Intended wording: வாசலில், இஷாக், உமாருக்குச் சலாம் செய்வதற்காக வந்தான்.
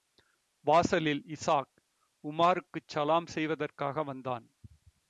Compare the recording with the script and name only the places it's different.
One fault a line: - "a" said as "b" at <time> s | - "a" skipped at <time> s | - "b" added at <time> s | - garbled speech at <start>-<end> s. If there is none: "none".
none